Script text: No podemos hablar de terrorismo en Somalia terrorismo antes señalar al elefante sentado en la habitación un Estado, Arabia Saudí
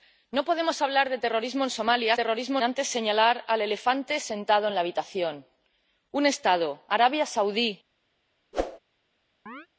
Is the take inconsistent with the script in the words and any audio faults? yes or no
yes